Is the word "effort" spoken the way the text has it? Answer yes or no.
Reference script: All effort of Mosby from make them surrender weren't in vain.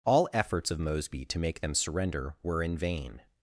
no